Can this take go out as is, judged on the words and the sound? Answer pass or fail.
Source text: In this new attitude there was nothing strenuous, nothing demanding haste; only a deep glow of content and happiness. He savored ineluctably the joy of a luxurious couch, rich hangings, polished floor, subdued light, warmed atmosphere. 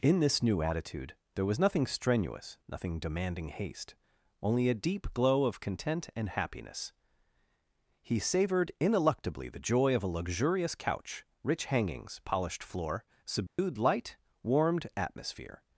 fail